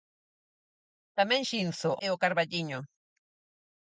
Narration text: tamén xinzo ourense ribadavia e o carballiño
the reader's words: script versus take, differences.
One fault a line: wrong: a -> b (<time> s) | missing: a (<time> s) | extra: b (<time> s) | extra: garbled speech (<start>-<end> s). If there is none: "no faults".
missing: ourense ribadavia (1.9 s)